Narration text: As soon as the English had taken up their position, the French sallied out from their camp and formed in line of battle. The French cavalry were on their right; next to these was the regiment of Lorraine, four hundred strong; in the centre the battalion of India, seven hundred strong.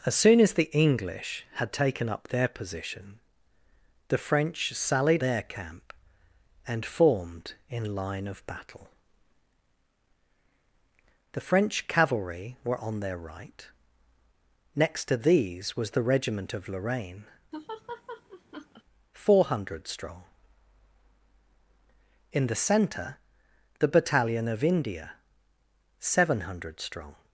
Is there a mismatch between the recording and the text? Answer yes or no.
yes